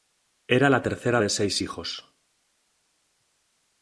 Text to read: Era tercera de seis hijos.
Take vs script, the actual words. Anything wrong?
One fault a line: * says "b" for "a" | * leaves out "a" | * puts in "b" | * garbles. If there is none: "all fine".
* puts in "la"